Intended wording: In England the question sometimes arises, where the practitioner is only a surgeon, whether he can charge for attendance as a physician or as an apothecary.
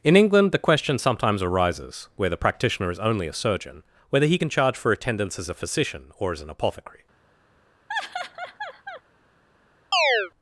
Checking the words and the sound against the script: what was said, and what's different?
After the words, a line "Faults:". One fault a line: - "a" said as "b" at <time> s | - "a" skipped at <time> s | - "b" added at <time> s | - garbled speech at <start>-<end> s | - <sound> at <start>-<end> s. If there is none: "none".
In England the question sometimes arises, where the practitioner is only a surgeon, whether he can charge for attendance as a physician or as an apothecary.
Faults:
- laugh at 7.9-9.0 s
- chirp at 9.9-10.3 s